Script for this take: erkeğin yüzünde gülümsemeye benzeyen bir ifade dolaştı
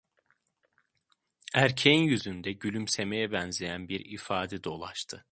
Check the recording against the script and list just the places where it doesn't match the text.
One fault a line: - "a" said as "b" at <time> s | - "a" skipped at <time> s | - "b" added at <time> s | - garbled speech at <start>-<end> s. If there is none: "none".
none